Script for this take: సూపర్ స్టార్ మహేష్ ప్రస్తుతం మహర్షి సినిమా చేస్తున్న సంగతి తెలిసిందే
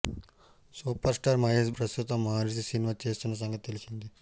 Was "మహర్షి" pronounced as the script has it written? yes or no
yes